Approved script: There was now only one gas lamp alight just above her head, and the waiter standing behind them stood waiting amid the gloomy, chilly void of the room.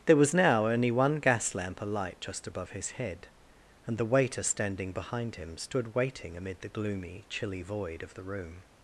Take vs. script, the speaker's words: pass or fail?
fail